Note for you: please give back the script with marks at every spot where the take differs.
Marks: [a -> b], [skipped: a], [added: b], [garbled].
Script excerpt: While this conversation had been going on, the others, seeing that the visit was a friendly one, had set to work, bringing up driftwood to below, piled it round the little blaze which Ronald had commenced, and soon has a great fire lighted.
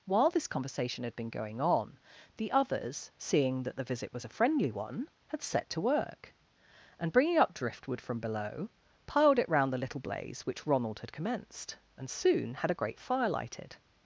While this conversation had been going on, the others, seeing that the visit was a friendly one, had set to work, [added: and] bringing up driftwood [to -> from] below, piled it round the little blaze which Ronald had commenced, and soon [has -> had] a great fire lighted.